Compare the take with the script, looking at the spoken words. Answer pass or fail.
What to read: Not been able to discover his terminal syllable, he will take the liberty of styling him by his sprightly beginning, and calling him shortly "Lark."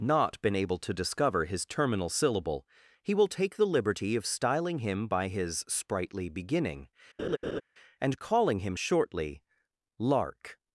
pass